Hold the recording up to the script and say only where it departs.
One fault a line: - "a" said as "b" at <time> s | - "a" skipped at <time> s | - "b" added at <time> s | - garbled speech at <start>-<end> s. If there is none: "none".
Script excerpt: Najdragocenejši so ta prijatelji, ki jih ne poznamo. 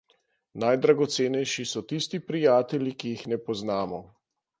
- "ta" said as "tisti" at 1.9 s